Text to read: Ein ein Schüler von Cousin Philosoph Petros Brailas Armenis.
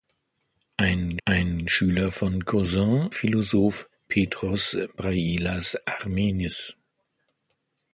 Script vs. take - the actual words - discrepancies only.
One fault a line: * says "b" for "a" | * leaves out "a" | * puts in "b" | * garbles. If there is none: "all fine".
all fine